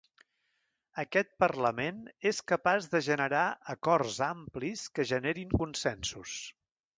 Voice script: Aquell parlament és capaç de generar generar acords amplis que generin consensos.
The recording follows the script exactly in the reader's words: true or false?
false